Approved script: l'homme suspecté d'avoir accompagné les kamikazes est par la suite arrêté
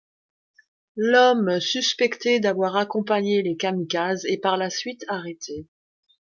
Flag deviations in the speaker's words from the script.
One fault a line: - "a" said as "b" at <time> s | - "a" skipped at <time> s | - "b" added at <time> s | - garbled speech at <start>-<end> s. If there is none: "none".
none